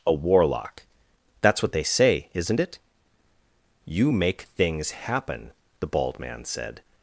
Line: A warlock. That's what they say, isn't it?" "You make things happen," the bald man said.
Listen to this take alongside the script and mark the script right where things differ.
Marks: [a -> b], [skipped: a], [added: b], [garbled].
A warlock. That's what they say, isn't it?" "You make things happen," the bald man said.